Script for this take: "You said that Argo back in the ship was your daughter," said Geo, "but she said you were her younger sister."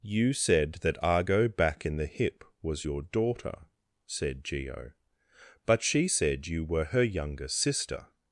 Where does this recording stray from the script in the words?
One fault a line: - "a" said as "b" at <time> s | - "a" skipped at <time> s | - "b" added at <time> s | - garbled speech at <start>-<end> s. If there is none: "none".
- "ship" said as "hip" at 2.1 s